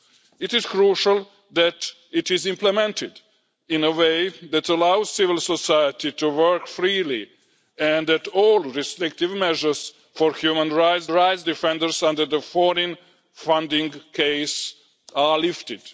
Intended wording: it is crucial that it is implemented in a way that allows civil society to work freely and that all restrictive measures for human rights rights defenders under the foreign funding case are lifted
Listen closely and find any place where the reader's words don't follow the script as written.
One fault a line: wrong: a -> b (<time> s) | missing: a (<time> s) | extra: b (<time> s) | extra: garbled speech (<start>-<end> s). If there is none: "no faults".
no faults